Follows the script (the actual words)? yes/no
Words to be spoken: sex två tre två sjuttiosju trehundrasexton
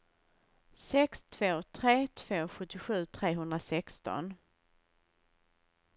yes